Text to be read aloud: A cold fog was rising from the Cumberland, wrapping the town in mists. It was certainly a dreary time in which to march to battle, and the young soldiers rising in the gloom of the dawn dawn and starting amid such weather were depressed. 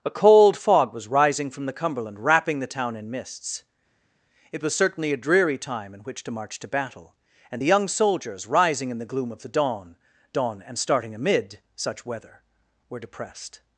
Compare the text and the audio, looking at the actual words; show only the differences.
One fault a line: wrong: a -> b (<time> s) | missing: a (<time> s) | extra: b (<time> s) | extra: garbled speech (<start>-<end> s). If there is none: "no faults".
no faults